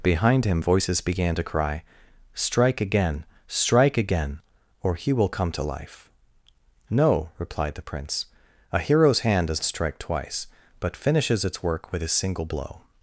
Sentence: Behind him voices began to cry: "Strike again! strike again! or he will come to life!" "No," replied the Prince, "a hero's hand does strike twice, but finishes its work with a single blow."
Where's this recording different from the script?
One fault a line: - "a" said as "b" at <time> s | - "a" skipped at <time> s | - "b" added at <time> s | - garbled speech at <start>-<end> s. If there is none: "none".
none